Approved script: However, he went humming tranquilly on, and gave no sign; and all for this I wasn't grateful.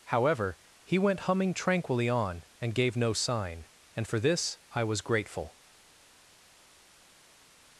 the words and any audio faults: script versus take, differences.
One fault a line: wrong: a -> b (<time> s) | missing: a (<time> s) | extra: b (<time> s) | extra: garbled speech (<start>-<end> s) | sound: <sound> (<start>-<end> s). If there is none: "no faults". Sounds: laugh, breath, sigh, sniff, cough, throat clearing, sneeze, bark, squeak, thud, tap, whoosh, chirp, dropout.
missing: all (4.1 s)
wrong: wasn't -> was (4.8 s)